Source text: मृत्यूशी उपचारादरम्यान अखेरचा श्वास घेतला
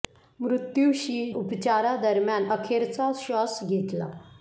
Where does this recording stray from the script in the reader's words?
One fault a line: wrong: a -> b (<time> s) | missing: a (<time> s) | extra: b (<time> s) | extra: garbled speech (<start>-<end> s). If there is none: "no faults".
no faults